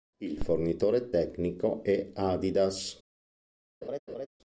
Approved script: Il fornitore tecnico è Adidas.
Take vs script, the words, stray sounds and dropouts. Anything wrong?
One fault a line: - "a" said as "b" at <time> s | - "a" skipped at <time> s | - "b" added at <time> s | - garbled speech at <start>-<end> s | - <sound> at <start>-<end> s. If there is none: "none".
- laugh at 3.8-4.3 s